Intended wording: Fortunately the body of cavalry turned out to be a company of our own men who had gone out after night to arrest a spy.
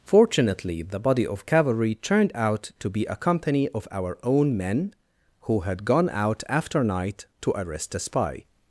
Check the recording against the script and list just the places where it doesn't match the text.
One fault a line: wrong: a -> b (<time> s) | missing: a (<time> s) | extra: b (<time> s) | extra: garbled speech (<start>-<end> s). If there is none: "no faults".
no faults